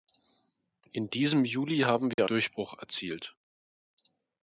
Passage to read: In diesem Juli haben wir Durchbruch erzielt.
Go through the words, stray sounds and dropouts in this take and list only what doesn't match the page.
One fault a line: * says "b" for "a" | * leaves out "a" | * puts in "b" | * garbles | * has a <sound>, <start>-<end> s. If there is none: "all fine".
* has a dropout, 2.1-2.2 s